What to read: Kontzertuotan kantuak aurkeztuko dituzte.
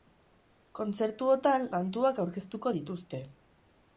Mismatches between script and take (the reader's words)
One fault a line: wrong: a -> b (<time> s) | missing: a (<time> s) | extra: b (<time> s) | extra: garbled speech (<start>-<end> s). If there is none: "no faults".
no faults